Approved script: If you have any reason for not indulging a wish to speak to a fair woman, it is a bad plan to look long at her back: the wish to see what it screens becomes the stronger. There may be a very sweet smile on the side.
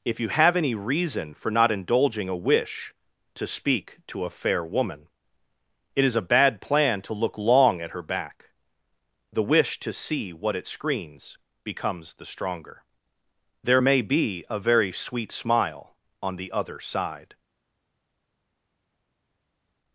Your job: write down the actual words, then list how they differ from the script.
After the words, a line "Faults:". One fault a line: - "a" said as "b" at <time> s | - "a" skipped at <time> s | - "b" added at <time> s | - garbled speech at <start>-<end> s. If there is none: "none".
If you have any reason for not indulging a wish to speak to a fair woman, it is a bad plan to look long at her back: the wish to see what it screens becomes the stronger. There may be a very sweet smile on the other side.
Faults:
- "other" added at 16.5 s